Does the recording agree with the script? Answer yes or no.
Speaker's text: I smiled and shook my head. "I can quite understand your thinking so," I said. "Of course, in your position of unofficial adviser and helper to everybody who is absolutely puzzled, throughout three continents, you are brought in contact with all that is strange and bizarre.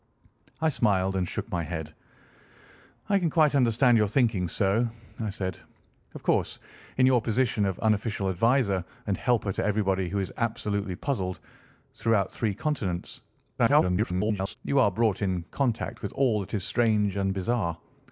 no